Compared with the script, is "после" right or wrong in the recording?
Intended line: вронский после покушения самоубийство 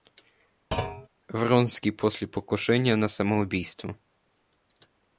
right